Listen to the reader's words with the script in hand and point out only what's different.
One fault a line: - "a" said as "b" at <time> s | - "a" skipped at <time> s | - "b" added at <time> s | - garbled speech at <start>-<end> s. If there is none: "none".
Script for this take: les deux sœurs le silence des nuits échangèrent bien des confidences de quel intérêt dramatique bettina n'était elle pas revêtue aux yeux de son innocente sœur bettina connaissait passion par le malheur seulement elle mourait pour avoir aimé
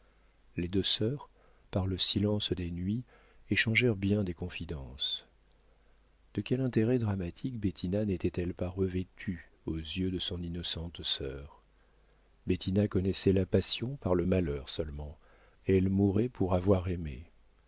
- "par" added at 1.7 s
- "la" added at 13.3 s